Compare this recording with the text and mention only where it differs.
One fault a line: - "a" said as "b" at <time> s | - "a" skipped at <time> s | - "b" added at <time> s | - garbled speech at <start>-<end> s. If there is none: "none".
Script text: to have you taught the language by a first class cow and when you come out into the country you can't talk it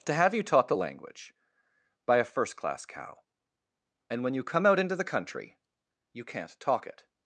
none